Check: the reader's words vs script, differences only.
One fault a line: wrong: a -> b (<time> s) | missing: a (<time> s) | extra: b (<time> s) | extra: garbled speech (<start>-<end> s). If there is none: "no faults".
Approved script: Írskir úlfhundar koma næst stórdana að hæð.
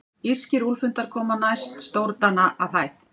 no faults